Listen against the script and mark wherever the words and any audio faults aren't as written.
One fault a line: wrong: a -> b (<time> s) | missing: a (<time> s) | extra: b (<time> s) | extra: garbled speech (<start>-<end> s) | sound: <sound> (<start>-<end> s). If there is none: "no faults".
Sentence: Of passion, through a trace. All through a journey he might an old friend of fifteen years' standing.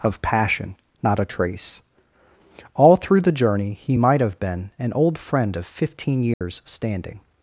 wrong: through -> not (1.0 s)
wrong: a -> the (3.2 s)
extra: have been (4.2 s)
sound: dropout (6.3-6.4 s)